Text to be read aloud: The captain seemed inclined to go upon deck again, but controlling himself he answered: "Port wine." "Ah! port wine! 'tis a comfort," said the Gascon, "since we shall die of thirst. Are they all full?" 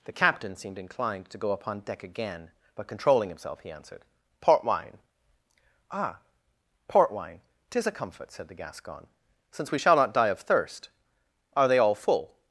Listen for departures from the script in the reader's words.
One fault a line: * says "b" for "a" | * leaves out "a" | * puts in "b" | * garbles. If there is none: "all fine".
* puts in "not"